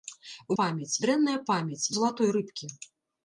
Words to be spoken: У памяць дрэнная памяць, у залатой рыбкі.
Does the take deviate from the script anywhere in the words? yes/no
no